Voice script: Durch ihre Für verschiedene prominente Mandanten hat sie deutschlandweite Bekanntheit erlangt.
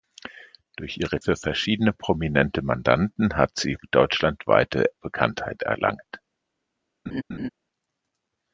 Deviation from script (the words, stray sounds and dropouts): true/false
true